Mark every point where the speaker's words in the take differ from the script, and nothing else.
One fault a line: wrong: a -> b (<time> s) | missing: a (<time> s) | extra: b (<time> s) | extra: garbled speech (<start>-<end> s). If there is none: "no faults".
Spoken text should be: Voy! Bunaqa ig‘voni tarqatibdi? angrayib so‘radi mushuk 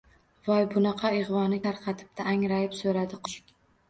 no faults